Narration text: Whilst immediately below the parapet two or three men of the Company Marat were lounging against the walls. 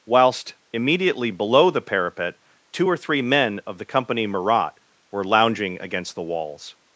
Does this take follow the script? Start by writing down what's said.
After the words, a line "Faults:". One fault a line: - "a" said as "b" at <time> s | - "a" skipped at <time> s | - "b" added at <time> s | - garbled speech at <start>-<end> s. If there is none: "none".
Whilst immediately below the parapet two or three men of the Company Marat were lounging against the walls.
Faults:
none